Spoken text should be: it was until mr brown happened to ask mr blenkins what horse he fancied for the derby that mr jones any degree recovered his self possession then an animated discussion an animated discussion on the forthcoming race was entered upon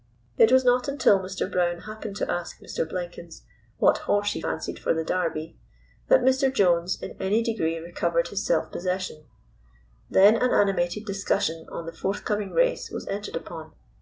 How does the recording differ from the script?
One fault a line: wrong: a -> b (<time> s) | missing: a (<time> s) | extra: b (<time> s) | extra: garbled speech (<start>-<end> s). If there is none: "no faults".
extra: not (0.7 s)
extra: in (7.0 s)
missing: an animated discussion (11.7 s)